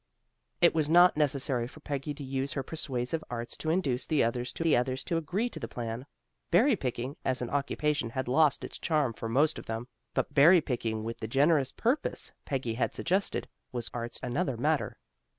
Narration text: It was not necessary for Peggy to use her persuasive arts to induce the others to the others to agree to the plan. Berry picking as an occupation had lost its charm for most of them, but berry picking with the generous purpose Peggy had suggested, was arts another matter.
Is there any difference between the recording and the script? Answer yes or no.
no